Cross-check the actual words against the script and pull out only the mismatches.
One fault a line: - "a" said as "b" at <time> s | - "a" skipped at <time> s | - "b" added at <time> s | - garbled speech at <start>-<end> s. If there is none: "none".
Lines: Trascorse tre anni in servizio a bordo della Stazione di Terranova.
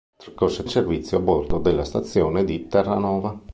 - "tre anni" skipped at 0.7 s